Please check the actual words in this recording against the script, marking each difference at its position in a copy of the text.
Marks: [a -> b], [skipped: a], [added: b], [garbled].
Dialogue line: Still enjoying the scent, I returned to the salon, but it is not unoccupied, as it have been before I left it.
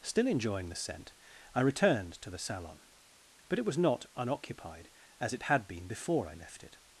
Still enjoying the scent, I returned to the salon, but it [is -> was] not unoccupied, as it [have -> had] been before I left it.